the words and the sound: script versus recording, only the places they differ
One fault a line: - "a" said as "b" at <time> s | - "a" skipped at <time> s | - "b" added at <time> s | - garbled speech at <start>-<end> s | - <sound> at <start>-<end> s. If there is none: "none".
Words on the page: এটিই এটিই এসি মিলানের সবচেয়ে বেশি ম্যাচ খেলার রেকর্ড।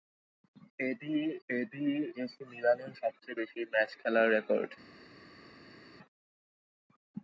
none